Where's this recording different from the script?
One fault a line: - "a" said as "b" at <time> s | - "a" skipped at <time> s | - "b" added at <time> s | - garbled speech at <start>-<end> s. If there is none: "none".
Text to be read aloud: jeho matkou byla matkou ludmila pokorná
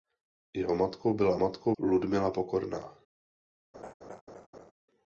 none